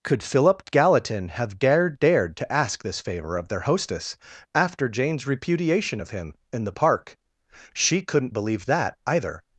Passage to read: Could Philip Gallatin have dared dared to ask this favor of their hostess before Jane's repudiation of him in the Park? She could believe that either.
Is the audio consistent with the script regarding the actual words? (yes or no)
no